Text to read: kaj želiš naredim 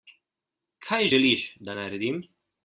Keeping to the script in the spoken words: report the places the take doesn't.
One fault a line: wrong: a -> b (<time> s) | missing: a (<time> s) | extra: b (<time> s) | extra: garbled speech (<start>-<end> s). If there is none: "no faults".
extra: da (1.6 s)